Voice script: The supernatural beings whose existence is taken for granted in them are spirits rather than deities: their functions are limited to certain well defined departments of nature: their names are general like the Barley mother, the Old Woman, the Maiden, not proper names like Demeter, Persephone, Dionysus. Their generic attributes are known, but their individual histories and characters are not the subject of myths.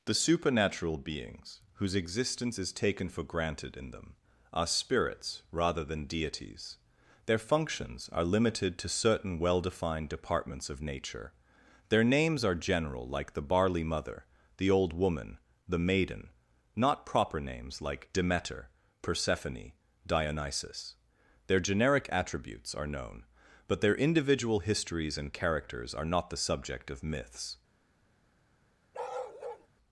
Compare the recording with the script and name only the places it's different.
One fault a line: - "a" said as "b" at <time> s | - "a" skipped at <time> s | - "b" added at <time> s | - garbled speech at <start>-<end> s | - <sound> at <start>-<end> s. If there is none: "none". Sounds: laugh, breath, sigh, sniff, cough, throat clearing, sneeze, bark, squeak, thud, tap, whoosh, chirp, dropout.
- bark at 28.9-29.7 s